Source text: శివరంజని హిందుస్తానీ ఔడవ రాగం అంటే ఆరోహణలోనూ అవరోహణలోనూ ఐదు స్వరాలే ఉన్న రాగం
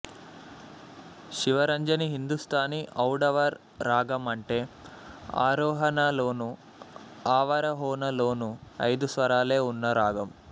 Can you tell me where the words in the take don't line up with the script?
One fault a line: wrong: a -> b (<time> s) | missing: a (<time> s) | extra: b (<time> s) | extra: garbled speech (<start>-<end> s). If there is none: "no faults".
no faults